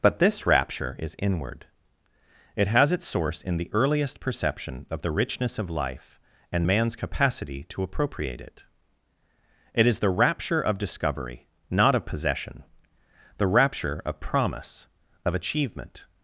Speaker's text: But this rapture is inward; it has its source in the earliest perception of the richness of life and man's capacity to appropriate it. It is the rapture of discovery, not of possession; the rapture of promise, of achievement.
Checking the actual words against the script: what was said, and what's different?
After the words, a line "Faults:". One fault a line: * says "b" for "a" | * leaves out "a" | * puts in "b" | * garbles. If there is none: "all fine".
But this rapture is inward; it has its source in the earliest perception of the richness of life and man's capacity to appropriate it. It is the rapture of discovery, not of possession; the rapture of promise, of achievement.
Faults:
all fine